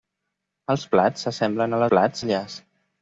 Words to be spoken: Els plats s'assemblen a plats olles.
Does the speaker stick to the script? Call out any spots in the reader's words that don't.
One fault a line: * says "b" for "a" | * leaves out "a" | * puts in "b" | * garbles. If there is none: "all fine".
all fine